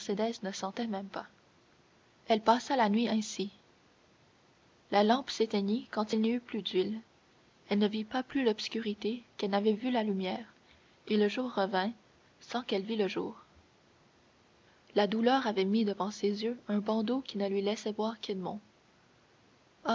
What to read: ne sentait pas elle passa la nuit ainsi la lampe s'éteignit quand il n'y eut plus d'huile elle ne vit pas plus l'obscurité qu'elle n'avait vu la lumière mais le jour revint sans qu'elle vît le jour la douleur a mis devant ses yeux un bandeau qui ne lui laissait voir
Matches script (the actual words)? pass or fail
fail